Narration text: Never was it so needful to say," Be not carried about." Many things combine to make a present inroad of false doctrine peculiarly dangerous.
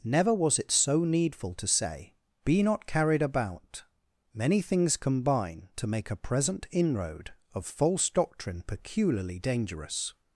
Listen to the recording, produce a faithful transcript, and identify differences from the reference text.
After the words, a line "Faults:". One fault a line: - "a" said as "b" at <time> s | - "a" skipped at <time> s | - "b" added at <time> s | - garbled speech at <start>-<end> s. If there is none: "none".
Never was it so needful to say," Be not carried about." Many things combine to make a present inroad of false doctrine peculiarly dangerous.
Faults:
none